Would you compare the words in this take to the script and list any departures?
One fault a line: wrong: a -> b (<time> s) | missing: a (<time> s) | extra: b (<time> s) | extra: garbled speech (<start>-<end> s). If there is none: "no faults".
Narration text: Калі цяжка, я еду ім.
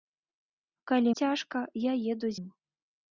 no faults